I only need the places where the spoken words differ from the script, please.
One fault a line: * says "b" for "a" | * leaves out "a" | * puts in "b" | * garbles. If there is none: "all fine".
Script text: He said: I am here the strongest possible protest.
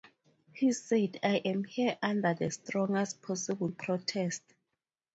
* puts in "under"